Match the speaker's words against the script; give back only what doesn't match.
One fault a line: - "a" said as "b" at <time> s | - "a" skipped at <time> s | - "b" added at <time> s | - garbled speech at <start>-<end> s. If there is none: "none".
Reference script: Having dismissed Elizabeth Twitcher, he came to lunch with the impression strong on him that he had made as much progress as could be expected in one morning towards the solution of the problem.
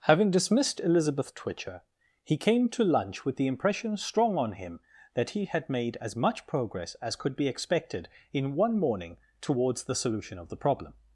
none